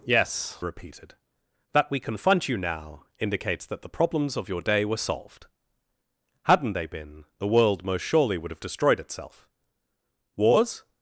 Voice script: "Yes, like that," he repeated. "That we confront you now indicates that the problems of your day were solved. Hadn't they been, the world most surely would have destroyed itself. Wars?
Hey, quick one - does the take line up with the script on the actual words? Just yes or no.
no